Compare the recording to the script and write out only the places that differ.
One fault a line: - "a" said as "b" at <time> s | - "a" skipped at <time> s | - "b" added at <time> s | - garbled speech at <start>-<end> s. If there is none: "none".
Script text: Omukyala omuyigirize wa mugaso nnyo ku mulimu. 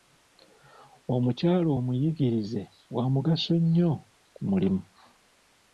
none